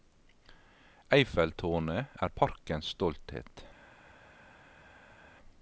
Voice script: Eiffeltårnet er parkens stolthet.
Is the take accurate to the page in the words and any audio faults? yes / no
yes